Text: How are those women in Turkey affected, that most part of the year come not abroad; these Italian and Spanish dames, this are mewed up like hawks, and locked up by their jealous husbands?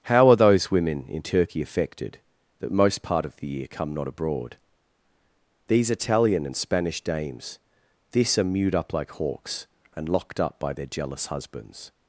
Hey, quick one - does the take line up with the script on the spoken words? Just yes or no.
yes